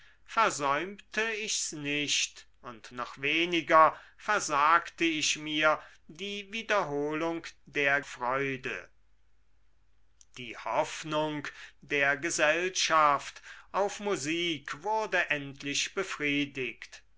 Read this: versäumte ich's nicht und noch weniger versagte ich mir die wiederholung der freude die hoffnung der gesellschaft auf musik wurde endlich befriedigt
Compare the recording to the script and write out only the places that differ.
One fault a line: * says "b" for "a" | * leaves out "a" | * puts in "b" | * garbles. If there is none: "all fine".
all fine